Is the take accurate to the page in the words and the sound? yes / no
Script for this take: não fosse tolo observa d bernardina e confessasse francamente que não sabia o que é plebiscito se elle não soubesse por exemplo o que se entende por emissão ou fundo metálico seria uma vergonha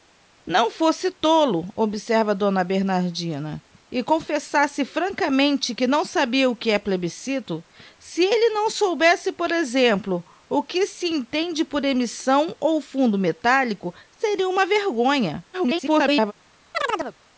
no